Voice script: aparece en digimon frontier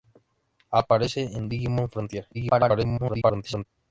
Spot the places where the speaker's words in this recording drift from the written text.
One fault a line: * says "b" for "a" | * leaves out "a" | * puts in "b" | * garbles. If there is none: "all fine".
* garbles